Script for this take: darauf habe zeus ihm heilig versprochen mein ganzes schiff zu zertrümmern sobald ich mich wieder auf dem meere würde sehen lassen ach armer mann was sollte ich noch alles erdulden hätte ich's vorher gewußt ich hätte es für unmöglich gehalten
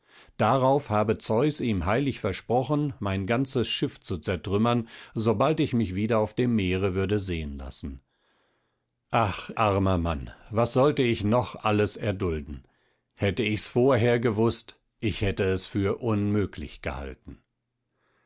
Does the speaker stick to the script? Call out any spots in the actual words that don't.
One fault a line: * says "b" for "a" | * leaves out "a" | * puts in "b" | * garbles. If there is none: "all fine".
all fine